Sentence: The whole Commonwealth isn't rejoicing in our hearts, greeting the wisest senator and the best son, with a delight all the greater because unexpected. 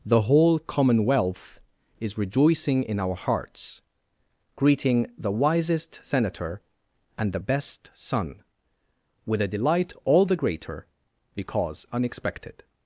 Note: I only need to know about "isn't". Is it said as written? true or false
false